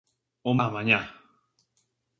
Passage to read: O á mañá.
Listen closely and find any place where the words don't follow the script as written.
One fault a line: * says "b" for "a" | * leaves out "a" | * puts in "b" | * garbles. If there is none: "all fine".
all fine